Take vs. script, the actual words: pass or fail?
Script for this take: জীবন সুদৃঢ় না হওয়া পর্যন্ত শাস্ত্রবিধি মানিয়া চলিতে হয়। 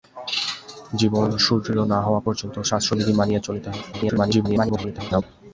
fail